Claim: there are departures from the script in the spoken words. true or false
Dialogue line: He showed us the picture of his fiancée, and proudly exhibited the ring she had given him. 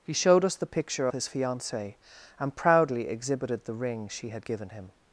true